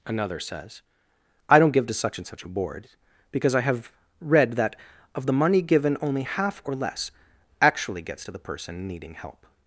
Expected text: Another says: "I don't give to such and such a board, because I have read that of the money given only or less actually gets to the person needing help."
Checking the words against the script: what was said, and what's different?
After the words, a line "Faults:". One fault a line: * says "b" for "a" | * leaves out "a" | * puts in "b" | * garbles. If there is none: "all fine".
Another says: "I don't give to such and such a board, because I have read that of the money given only half or less actually gets to the person needing help."
Faults:
* puts in "half"